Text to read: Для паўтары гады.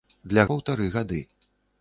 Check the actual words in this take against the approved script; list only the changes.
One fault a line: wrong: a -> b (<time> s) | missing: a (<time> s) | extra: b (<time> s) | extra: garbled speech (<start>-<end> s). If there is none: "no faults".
no faults